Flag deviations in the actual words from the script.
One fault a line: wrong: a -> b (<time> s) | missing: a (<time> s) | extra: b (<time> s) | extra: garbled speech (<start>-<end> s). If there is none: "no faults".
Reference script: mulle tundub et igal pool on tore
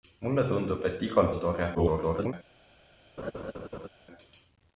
missing: pool (1.3 s)
extra: garbled speech (1.7-2.3 s)